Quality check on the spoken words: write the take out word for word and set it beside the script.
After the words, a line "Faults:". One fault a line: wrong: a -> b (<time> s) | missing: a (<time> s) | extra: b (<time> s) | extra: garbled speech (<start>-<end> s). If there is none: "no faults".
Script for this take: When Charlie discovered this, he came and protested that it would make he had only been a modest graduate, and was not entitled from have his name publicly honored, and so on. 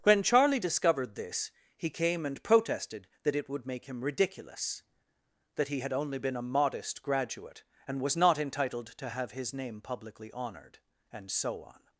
When Charlie discovered this, he came and protested that it would make him ridiculous, that he had only been a modest graduate, and was not entitled to have his name publicly honored, and so on.
Faults:
extra: him ridiculous that (3.9 s)
wrong: from -> to (9.0 s)